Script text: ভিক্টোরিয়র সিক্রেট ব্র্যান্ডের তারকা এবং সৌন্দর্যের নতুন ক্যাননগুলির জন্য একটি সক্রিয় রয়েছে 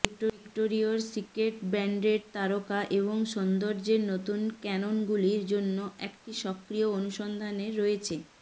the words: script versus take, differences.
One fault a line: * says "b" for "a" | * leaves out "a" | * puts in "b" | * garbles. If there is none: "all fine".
* puts in "অনুসন্ধানে"